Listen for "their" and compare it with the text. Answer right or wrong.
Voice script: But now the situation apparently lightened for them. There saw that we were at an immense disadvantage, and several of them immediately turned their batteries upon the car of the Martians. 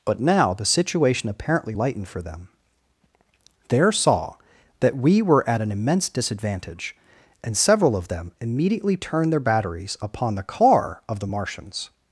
right